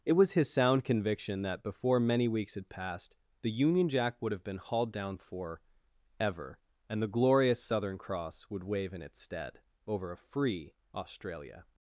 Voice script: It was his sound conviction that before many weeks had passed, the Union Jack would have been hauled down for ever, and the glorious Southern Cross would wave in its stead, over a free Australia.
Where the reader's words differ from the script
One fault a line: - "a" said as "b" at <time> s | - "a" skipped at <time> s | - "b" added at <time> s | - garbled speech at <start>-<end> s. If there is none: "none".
none